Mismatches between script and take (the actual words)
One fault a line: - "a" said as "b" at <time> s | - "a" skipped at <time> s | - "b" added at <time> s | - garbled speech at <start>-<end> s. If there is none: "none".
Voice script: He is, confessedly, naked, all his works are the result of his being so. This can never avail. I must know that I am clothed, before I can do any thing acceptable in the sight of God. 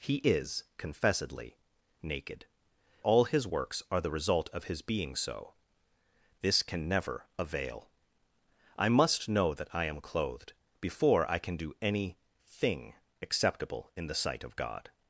none